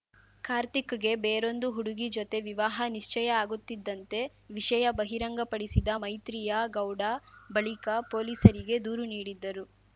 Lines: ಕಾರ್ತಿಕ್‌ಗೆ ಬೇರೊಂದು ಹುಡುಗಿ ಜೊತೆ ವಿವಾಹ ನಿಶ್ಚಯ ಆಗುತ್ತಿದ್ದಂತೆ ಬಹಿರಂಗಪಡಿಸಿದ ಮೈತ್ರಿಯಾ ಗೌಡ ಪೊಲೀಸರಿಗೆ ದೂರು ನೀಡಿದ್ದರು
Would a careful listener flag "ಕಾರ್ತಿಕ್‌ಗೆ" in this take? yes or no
no